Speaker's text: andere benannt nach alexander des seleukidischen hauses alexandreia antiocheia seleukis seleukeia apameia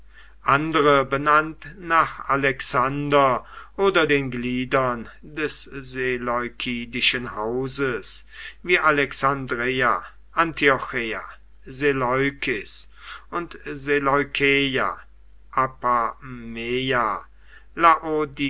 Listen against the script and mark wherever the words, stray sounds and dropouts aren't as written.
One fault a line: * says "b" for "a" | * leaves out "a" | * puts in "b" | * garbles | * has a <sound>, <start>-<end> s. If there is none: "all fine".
* puts in "oder den gliedern"
* puts in "wie"
* puts in "und"